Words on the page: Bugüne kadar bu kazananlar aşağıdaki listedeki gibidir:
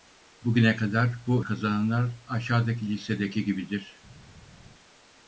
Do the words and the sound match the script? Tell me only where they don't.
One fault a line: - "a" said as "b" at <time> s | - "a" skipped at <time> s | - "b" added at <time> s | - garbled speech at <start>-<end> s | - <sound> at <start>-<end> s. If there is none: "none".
none